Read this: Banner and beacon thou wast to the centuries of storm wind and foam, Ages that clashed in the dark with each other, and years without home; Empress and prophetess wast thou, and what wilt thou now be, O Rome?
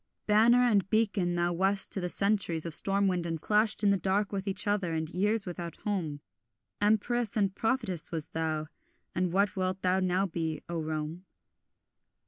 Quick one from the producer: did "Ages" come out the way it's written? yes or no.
no